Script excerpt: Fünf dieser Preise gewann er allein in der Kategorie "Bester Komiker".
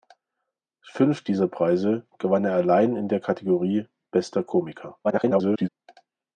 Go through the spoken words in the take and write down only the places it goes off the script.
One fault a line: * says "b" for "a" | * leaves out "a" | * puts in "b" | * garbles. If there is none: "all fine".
* garbles